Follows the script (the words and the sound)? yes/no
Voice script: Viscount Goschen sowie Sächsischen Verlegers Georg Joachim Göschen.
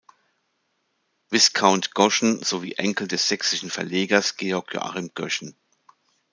no